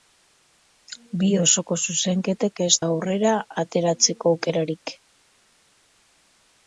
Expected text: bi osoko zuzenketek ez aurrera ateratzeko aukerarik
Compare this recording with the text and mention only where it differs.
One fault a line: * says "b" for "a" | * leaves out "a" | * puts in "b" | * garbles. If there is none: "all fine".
all fine